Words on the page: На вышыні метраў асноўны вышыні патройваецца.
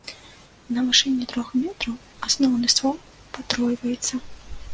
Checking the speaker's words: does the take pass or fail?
fail